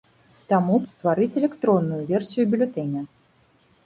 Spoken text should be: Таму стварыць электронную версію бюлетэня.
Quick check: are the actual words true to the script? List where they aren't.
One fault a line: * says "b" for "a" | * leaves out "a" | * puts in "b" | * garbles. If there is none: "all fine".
all fine